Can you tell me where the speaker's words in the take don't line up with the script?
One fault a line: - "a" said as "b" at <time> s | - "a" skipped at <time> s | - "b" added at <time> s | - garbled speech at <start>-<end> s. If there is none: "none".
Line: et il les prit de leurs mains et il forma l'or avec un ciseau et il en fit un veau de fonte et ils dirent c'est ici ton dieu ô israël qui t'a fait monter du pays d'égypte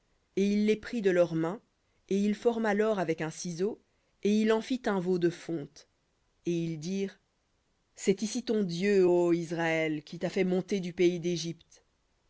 none